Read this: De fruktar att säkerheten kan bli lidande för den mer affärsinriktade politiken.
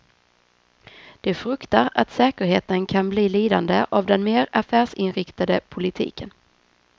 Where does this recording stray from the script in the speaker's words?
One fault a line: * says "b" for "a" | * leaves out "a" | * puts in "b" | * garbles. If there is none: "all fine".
* says "av" for "för"